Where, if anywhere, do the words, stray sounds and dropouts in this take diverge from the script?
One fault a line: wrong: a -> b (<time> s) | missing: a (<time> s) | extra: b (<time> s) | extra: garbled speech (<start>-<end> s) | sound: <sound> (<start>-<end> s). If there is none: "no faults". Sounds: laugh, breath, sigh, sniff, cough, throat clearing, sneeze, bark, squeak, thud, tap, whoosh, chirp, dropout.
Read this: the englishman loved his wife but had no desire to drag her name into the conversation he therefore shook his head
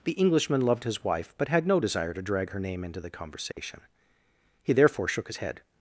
sound: dropout (3.5-3.6 s)